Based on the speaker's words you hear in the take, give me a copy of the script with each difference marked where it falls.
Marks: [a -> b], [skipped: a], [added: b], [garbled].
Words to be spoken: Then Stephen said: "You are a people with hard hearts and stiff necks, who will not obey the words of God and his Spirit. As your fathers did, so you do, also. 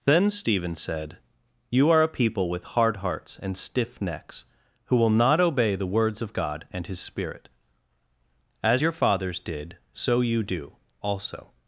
Then Stephen said: "You are a people with hard hearts and stiff necks, who will not obey the words of God and his Spirit. As your fathers did, so you do, also.